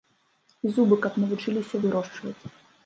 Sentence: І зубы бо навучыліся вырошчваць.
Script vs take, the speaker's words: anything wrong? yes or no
yes